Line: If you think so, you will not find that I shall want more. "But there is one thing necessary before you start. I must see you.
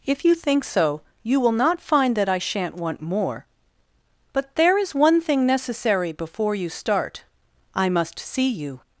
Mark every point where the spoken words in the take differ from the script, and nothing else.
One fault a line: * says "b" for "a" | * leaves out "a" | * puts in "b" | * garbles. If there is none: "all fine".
* says "shan't" for "shall"